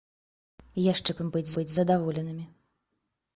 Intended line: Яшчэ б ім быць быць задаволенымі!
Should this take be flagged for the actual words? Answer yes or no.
no